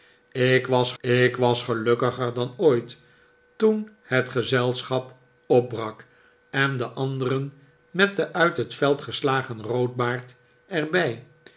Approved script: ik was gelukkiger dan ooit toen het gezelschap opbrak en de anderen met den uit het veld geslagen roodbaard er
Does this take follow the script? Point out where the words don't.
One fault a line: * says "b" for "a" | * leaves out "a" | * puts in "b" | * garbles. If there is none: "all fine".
* puts in "ik was"